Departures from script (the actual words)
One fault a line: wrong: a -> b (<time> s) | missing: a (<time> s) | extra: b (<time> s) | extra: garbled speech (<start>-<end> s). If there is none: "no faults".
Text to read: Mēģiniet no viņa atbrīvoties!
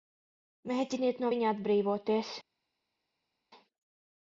no faults